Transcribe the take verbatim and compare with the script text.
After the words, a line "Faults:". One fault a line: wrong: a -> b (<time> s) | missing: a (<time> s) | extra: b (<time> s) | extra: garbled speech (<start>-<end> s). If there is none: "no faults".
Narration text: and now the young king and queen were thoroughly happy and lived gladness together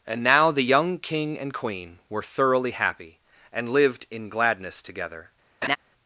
and now the young king and queen were thoroughly happy and lived in gladness together
Faults:
extra: in (4.1 s)